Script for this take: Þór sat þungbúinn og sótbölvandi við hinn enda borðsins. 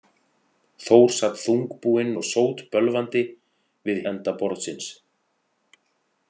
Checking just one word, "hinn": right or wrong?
wrong